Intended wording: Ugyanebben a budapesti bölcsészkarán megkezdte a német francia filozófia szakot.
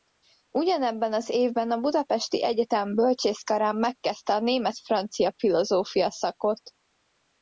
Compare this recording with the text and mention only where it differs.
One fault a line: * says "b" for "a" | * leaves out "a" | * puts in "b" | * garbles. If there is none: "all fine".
* puts in "az évben"
* puts in "egyetem"